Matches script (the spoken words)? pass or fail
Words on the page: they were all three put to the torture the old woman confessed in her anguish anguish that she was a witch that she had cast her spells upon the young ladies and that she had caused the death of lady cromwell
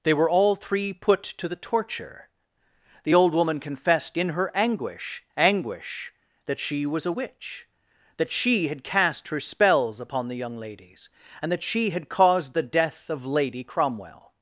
pass